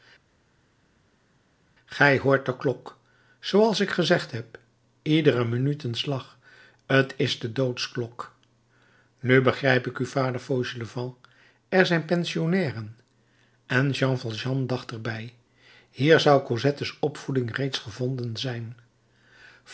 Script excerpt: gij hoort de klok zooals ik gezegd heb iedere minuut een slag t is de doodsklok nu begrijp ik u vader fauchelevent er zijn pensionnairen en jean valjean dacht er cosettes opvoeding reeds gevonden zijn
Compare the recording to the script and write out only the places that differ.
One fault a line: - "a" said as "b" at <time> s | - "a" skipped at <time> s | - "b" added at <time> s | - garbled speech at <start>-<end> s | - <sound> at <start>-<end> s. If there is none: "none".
- "bij hier zou" added at 15.0 s